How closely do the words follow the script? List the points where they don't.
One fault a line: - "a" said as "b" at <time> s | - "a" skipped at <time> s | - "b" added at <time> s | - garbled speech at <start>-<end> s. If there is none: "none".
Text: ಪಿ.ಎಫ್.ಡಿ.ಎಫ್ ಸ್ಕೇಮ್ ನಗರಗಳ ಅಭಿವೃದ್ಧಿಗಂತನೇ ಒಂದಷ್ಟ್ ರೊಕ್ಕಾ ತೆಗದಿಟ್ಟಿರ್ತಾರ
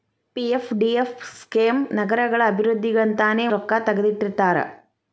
- "ಒಂದಷ್ಟ್" skipped at 3.5 s